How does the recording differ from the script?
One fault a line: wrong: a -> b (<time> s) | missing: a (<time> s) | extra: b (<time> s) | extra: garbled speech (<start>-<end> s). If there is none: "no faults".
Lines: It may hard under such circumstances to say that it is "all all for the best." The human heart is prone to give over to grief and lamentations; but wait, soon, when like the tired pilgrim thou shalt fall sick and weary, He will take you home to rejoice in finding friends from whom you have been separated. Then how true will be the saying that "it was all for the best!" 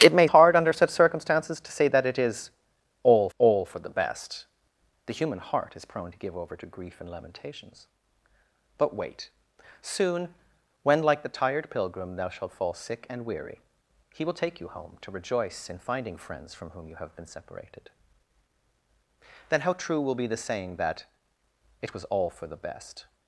no faults